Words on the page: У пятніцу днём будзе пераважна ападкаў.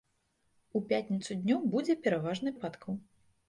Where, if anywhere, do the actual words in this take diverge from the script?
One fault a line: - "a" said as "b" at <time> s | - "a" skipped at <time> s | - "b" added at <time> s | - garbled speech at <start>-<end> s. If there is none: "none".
none